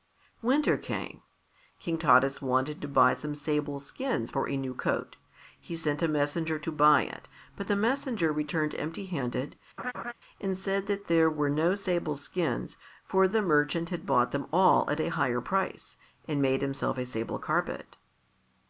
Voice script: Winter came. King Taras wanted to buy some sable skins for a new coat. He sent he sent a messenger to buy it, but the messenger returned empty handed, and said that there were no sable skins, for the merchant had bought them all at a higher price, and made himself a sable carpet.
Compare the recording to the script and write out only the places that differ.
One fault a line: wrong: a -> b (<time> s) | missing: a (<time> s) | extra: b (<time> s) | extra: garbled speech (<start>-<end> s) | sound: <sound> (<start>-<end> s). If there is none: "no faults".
missing: he sent (6.0 s)
sound: laugh (9.8-10.1 s)